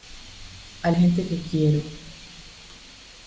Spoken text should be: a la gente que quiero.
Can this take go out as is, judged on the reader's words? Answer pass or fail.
fail